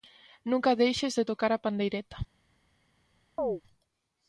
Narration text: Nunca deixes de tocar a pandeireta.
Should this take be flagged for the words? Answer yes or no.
no